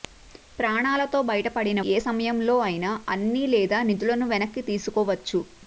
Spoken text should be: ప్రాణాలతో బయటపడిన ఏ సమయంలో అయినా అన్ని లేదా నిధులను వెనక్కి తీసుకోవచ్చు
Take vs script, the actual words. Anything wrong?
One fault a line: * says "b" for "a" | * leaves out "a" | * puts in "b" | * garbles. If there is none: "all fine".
all fine